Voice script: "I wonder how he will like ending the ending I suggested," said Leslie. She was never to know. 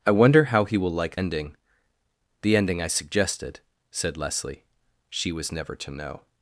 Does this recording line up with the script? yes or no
yes